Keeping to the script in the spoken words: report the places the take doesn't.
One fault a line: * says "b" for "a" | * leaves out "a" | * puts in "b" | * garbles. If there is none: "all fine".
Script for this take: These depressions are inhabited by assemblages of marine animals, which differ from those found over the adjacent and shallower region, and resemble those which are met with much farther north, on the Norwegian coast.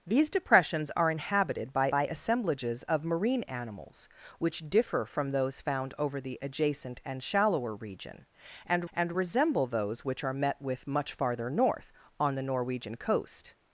* puts in "by"
* puts in "and"